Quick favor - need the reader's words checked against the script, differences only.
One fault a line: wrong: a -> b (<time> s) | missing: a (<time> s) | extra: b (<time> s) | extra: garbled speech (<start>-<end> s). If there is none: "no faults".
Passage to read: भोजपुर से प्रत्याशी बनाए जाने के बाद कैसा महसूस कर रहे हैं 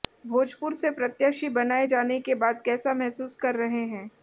no faults